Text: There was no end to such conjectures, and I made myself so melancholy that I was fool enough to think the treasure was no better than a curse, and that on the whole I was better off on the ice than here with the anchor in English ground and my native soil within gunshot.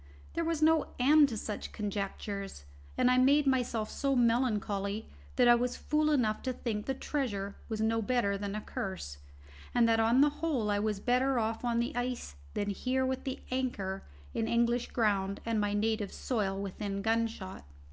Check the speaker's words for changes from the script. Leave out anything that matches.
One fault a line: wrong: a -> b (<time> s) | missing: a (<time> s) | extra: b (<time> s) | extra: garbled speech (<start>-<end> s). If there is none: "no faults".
no faults